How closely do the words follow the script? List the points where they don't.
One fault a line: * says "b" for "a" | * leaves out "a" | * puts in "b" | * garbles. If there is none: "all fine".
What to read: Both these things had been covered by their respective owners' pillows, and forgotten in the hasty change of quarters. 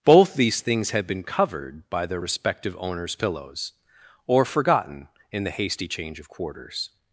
* says "or" for "and"